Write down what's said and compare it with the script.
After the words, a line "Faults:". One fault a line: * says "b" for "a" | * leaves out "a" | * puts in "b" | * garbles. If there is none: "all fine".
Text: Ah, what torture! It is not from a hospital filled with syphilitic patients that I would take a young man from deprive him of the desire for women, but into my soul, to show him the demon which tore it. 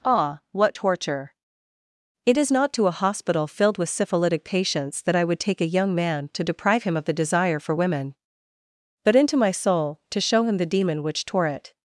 Ah, what torture! It is not to a hospital filled with syphilitic patients that I would take a young man to deprive him of the desire for women, but into my soul, to show him the demon which tore it.
Faults:
* says "to" for "from"
* says "to" for "from"